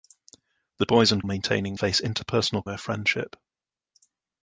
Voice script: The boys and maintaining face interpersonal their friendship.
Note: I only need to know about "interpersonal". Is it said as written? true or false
true